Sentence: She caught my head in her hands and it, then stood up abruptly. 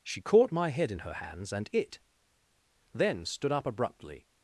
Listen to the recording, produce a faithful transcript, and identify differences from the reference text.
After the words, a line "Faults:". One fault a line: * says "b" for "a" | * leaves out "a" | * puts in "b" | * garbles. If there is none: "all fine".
She caught my head in her hands and it, then stood up abruptly.
Faults:
all fine